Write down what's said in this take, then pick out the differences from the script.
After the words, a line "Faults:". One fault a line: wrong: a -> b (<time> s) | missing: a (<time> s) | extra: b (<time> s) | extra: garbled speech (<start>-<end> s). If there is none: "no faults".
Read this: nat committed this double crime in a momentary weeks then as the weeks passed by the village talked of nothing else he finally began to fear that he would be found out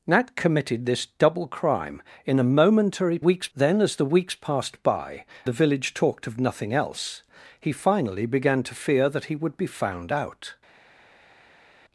nat committed this double crime in a momentary weeks then as the weeks passed by the village talked of nothing else he finally began to fear that he would be found out
Faults:
no faults